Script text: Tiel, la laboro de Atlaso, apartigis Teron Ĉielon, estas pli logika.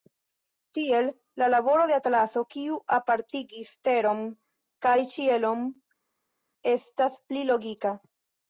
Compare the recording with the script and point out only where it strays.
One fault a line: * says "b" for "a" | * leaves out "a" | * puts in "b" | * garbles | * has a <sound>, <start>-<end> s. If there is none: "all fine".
* puts in "kiu"
* puts in "kaj"